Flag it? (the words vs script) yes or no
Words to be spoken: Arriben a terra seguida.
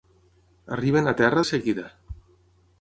no